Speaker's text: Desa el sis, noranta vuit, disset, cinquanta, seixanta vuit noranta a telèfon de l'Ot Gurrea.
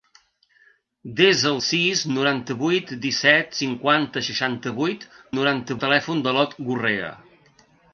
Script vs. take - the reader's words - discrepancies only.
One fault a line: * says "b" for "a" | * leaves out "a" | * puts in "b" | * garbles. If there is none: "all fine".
all fine